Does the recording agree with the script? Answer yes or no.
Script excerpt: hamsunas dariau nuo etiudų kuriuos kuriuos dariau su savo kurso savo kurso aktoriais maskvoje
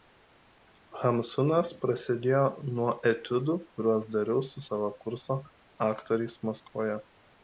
no